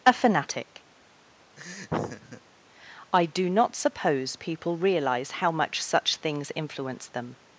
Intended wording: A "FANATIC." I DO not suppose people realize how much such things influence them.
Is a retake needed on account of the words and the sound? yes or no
yes